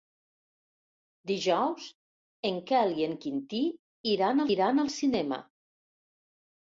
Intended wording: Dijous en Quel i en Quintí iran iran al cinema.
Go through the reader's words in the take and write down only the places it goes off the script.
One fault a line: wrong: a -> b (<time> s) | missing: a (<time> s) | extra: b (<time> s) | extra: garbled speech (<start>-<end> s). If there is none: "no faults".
no faults